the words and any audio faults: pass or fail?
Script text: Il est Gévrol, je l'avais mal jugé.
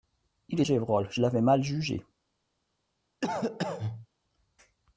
fail